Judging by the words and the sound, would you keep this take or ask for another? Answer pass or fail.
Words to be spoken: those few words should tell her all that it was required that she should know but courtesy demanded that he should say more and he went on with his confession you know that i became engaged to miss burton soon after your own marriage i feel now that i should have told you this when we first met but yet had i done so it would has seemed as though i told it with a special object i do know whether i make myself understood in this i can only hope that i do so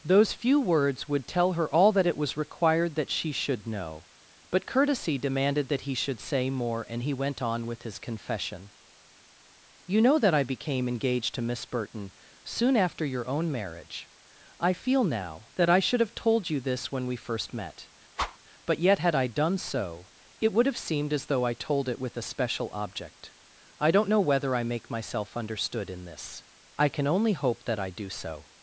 fail